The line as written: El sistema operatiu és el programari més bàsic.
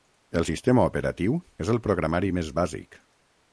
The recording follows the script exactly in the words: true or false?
true